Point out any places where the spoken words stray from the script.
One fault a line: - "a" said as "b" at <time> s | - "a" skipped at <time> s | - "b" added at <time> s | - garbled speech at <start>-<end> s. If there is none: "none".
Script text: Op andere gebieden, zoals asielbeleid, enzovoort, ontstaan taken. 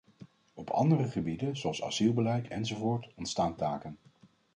none